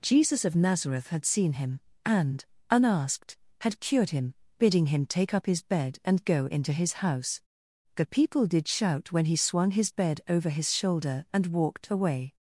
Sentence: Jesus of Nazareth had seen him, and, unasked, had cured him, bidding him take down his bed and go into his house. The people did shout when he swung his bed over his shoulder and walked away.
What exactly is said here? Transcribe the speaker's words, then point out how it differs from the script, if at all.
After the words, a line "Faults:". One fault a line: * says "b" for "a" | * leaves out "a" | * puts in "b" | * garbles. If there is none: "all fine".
Jesus of Nazareth had seen him, and, unasked, had cured him, bidding him take up his bed and go into his house. The people did shout when he swung his bed over his shoulder and walked away.
Faults:
* says "up" for "down"